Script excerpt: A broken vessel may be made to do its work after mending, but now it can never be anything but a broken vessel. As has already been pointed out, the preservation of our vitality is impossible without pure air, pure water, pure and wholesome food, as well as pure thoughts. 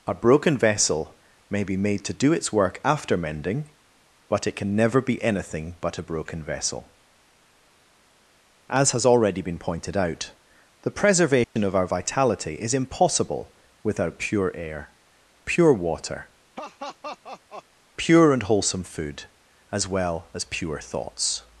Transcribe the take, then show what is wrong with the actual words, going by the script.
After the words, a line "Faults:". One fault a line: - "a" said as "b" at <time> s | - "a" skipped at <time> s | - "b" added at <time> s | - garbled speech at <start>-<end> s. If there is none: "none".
A broken vessel may be made to do its work after mending, but it can never be anything but a broken vessel. As has already been pointed out, the preservation of our vitality is impossible without pure air, pure water, pure and wholesome food, as well as pure thoughts.
Faults:
- "now" skipped at 4.5 s